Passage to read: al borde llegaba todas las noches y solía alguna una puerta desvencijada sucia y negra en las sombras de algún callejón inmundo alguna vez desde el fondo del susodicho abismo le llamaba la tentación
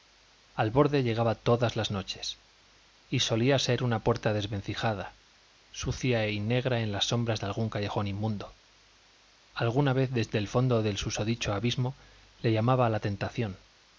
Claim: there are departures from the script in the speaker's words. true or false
true